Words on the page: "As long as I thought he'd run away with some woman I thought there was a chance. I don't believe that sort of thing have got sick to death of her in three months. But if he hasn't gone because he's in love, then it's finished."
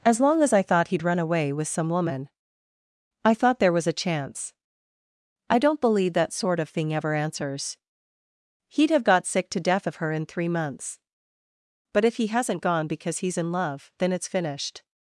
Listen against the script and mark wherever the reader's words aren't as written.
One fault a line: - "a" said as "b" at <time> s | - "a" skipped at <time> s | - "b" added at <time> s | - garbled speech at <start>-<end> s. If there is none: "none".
- "ever answers He'd" added at 6.9 s